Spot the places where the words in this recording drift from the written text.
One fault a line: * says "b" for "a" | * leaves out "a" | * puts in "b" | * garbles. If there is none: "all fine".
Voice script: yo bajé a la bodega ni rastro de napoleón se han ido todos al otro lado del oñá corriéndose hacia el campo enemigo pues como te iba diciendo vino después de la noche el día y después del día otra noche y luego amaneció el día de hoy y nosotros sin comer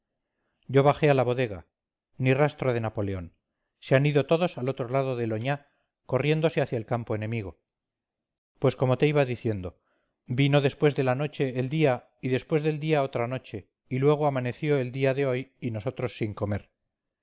all fine